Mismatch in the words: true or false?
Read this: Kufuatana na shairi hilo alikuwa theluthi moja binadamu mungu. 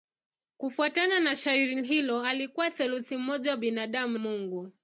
false